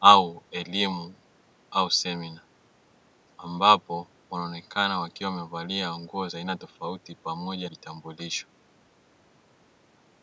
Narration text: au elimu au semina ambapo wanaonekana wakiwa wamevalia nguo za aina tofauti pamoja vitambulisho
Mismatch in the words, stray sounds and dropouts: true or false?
false